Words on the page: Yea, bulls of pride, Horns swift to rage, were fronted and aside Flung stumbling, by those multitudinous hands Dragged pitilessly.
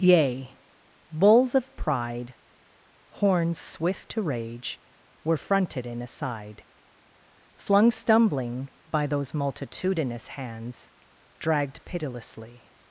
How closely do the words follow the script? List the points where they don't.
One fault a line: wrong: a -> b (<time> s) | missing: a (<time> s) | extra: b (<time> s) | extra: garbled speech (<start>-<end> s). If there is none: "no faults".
wrong: and -> in (5.8 s)